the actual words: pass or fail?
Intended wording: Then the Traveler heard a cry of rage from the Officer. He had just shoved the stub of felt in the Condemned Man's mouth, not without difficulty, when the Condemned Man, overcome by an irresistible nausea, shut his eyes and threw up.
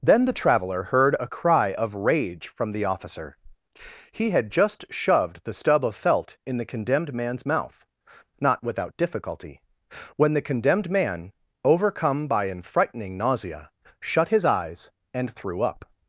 fail